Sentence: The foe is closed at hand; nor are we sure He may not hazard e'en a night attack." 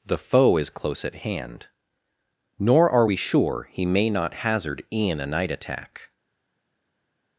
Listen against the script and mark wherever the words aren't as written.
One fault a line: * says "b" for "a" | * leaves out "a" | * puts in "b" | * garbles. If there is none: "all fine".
* says "close" for "closed"